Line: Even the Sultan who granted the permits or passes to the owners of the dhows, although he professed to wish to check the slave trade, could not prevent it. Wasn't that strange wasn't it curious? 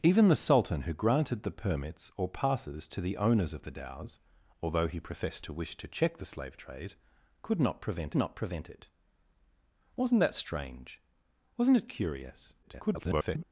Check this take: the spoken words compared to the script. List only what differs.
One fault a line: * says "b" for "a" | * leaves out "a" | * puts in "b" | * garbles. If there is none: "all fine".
* puts in "not prevent"
* garbles